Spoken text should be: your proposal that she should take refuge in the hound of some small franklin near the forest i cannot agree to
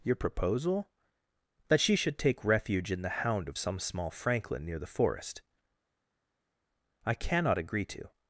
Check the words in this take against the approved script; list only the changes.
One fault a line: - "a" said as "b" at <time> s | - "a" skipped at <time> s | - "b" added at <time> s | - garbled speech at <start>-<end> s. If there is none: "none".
none